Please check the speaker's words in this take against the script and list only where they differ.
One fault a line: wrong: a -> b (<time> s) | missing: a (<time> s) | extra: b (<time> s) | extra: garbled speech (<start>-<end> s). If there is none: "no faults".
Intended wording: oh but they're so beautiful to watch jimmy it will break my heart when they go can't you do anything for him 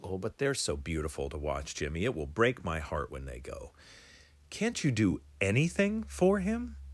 no faults